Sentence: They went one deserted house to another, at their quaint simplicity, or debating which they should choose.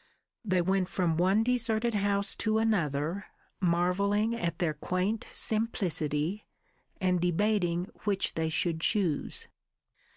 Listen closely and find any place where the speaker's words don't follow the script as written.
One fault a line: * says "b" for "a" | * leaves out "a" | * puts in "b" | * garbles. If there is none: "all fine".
* puts in "from"
* puts in "marvelling"
* says "and" for "or"